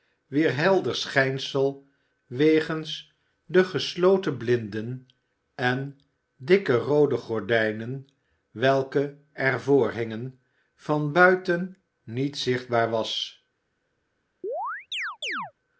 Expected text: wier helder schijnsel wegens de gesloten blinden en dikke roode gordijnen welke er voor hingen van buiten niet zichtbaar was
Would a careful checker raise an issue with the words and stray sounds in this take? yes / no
yes